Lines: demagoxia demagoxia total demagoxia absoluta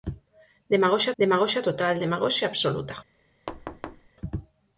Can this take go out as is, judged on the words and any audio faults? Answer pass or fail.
fail